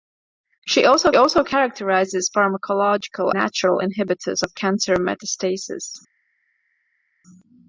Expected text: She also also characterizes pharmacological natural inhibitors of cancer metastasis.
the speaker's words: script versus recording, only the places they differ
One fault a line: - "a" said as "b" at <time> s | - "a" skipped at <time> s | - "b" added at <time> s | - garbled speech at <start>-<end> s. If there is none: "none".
none